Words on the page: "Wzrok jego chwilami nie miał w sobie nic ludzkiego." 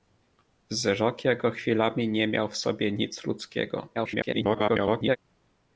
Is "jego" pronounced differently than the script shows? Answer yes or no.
no